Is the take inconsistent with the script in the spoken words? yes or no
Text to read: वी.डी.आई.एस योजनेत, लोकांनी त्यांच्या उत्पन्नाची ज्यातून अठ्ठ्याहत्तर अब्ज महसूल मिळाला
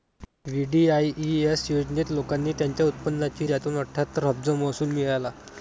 no